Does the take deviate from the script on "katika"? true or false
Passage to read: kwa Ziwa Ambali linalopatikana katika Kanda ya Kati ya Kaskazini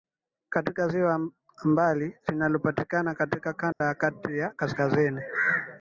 false